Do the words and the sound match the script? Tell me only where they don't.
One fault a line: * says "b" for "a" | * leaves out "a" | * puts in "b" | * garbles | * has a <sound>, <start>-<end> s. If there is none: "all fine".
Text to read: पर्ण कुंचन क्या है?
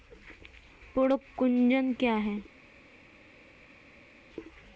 all fine